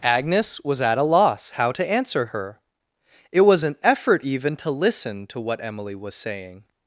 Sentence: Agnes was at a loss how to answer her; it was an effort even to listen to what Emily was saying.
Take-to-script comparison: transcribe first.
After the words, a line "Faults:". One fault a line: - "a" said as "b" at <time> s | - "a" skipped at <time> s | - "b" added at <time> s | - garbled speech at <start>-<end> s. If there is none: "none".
Agnes was at a loss how to answer her; it was an effort even to listen to what Emily was saying.
Faults:
none